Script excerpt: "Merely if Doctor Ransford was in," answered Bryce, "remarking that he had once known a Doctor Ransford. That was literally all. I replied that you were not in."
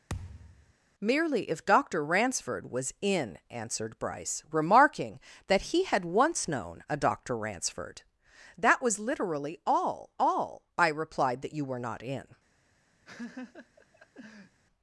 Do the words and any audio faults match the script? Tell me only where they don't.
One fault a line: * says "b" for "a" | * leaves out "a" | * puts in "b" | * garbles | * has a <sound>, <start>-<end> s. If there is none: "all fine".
* has a thud, 0.1-0.7 s
* puts in "all"
* has a laugh, 13.0-14.6 s